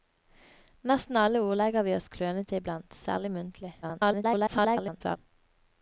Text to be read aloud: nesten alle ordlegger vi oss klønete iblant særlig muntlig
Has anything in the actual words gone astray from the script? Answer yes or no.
yes